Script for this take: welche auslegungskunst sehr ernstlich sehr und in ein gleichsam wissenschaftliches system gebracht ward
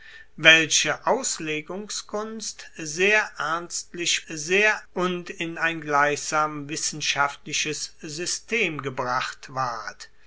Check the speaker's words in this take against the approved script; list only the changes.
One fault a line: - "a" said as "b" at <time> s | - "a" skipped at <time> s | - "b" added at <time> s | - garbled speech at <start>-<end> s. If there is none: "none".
none